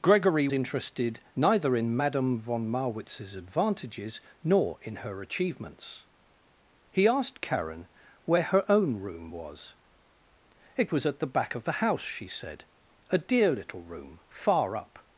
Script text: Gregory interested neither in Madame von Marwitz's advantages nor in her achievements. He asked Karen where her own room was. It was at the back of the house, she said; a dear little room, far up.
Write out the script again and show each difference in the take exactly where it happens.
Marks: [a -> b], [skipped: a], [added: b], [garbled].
Gregory interested neither in Madame von Marwitz's advantages nor in her achievements. He asked Karen where her own room was. It was at the back of the house, she said; a dear little room, far up.